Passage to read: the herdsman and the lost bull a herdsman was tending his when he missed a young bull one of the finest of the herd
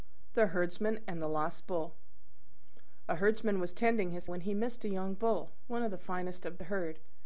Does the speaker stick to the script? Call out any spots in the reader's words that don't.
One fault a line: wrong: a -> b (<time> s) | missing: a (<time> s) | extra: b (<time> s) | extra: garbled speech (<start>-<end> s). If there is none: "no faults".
no faults